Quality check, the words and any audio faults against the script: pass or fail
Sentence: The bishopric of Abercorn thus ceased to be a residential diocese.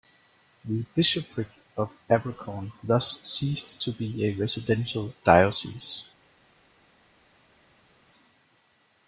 pass